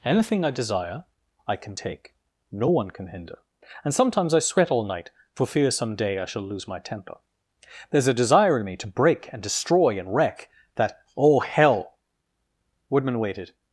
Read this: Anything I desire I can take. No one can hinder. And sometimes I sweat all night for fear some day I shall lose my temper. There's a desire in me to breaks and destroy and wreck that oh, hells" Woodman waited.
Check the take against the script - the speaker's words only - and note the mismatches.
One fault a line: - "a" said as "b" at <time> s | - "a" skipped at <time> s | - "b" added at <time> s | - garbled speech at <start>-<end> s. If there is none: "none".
- "breaks" said as "break" at 8.9 s
- "hells" said as "hell" at 11.4 s